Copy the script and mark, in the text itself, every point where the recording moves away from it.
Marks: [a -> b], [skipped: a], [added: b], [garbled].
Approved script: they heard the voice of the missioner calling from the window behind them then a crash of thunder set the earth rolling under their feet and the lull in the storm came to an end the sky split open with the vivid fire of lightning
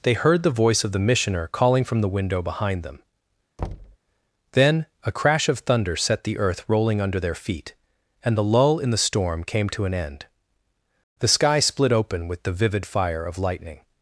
they heard the voice of the missioner calling from the window behind them then a crash of thunder set the earth rolling under their feet and the lull in the storm came to an end the sky split open with the vivid fire of lightning